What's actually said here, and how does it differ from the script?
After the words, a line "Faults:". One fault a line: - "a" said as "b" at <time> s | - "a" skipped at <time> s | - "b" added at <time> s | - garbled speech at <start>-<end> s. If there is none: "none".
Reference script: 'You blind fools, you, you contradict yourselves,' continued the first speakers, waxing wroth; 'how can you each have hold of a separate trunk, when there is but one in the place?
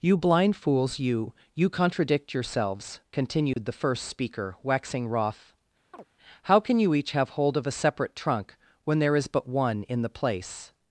'You blind fools, you, you contradict yourselves,' continued the first speaker, waxing wroth; 'how can you each have hold of a separate trunk, when there is but one in the place?
Faults:
- "speakers" said as "speaker" at 4.0 s